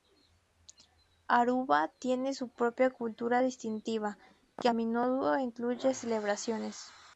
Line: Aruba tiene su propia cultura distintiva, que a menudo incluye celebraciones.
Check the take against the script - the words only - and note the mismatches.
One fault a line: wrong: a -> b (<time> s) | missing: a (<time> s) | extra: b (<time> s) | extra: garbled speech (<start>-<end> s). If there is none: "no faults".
no faults